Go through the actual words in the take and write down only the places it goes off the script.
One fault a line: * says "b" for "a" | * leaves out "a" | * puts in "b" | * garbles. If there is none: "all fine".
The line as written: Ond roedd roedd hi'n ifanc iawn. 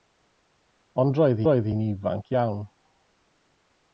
all fine